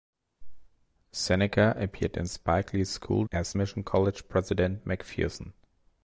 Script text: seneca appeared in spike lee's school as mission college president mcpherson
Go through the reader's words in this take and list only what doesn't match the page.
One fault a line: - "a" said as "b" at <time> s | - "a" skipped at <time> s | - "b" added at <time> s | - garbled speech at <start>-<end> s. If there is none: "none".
none